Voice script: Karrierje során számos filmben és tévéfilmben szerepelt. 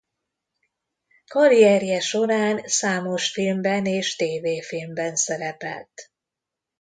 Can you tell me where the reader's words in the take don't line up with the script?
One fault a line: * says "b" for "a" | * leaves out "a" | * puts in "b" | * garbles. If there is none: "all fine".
all fine